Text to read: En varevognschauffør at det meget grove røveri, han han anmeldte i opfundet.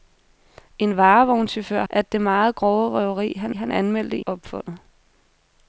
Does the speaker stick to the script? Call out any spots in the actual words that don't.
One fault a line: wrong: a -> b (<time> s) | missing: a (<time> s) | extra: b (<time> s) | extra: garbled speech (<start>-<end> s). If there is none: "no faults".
no faults